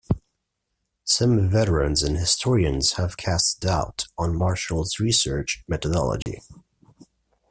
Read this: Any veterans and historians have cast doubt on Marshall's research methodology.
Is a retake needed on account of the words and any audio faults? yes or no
yes